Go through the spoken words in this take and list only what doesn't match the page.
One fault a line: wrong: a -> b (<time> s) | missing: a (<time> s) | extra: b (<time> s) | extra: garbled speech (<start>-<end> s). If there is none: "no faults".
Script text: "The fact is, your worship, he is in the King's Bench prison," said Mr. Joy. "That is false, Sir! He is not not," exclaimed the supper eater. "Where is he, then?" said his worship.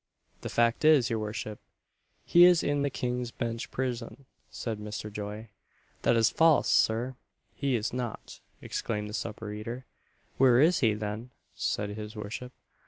missing: not (8.4 s)